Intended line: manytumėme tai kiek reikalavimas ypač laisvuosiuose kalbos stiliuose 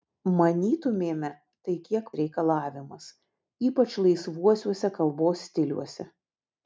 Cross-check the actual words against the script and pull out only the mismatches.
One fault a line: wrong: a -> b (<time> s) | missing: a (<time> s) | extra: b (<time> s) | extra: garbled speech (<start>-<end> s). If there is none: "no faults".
no faults